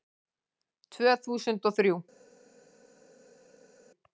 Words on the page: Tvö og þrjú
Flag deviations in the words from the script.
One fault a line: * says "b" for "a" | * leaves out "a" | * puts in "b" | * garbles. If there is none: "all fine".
* puts in "þúsund"